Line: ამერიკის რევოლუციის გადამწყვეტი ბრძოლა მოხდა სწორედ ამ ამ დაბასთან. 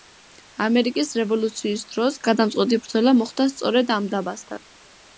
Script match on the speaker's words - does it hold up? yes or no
no